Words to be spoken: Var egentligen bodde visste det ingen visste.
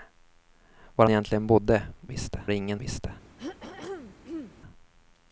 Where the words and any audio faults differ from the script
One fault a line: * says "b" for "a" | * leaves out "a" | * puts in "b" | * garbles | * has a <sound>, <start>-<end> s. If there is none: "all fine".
* has a throat clearing, 3.4-4.6 s